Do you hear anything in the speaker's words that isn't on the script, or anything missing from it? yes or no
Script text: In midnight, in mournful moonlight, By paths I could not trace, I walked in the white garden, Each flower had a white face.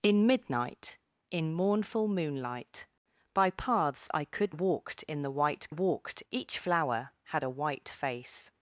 yes